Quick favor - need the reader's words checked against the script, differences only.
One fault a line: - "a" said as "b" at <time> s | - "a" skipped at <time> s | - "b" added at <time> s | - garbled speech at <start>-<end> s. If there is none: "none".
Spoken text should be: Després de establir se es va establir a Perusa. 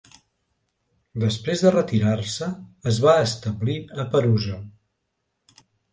- "establir" said as "retirar" at 1.8 s